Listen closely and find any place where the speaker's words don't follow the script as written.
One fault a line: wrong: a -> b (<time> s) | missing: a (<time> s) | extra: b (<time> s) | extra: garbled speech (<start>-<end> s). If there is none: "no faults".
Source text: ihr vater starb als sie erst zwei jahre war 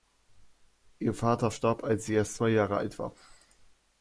extra: alt (2.8 s)